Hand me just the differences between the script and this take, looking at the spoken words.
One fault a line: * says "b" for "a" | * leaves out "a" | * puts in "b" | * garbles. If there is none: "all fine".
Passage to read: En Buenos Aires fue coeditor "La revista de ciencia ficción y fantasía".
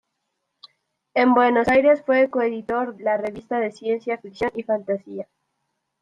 all fine